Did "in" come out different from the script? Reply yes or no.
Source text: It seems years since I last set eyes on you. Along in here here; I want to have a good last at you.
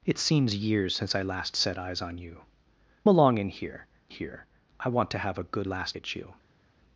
no